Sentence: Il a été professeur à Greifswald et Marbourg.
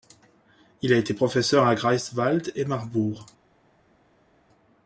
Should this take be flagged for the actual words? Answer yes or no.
no